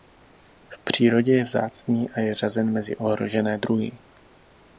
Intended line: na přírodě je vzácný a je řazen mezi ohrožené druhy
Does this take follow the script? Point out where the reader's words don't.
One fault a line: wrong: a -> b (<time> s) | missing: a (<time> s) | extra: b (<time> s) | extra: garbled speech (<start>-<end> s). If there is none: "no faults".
wrong: na -> v (0.7 s)